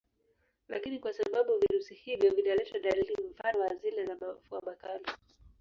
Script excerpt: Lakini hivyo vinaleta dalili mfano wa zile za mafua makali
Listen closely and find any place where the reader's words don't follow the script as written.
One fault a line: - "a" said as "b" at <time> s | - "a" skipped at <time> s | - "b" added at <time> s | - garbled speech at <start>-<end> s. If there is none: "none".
- "kwa sababu virusi" added at 1.0 s